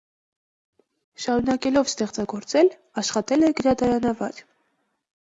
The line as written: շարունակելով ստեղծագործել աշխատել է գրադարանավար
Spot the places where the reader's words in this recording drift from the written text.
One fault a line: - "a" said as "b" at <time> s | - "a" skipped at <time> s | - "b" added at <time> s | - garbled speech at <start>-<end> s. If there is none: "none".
none